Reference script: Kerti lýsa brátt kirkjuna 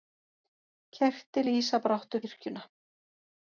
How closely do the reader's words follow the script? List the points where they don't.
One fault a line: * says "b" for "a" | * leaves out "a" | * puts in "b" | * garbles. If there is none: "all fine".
all fine